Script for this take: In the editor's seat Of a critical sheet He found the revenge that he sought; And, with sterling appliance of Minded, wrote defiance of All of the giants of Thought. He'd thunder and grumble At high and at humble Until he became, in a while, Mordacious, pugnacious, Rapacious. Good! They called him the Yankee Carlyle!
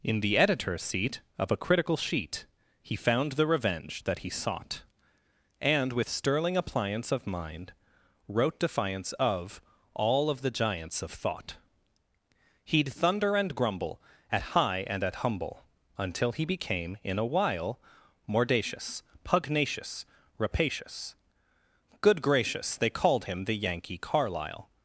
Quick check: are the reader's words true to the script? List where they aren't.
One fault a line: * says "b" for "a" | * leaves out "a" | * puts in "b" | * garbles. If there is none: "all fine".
* says "Mind" for "Minded"
* puts in "gracious"